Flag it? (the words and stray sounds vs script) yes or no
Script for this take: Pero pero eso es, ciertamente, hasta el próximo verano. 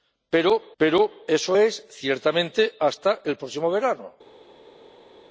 no